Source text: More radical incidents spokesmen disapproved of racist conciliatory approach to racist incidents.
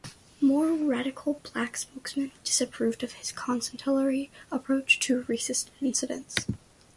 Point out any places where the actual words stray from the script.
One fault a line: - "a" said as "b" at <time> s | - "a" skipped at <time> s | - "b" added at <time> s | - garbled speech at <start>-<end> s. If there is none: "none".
- "incidents" said as "black" at 1.5 s
- "racist" said as "his" at 3.1 s